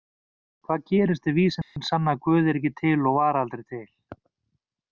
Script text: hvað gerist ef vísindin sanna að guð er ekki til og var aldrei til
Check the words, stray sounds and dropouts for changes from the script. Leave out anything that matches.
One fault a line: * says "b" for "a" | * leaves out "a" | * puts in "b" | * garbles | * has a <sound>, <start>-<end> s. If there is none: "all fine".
* has a dropout, 1.6-1.8 s